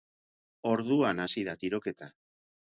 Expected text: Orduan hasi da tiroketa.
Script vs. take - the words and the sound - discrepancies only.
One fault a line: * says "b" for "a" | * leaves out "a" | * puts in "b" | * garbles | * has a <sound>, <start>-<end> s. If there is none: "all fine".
all fine